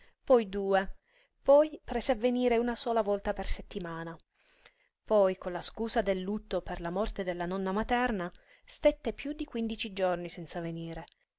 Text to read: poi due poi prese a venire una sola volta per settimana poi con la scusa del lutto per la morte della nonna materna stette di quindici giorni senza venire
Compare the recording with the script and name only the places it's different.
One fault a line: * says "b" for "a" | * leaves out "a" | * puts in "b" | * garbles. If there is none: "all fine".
* puts in "piú"